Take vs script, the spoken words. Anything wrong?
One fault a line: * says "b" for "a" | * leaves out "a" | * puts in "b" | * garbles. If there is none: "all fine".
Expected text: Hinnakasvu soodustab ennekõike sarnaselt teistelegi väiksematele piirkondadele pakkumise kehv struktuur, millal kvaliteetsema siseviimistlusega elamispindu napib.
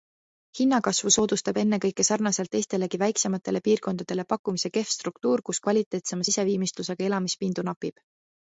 * says "kus" for "millal"